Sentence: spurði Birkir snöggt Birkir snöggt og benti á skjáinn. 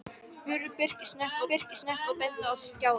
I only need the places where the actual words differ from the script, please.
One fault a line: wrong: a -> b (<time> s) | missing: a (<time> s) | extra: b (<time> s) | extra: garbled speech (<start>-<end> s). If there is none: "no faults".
no faults